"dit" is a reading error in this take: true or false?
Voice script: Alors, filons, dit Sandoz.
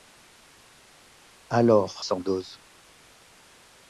true